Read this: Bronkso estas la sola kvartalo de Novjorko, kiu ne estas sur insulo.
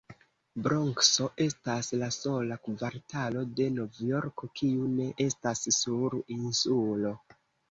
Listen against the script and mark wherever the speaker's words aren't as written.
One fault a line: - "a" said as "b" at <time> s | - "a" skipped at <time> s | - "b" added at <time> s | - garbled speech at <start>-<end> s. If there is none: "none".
none